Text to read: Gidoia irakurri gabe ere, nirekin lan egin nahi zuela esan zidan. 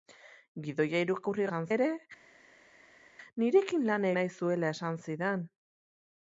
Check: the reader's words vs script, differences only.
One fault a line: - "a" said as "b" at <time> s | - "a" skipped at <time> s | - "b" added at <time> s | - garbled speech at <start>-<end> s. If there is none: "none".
- "gabe" said as "esan" at 1.5 s
- "egin" skipped at 4.1 s